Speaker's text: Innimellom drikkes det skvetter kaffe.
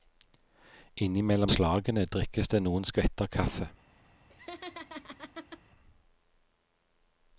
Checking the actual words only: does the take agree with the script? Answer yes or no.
no